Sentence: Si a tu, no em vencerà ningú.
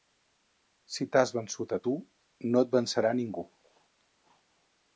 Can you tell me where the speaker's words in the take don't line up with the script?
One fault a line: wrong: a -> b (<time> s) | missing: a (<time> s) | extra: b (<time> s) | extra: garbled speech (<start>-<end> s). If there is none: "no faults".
extra: t'has vençut (1.1 s)
wrong: em -> et (2.7 s)